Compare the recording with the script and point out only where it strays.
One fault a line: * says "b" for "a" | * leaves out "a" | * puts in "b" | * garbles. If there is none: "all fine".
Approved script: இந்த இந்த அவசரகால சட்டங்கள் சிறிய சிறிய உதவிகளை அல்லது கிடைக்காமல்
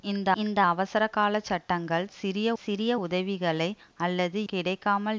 all fine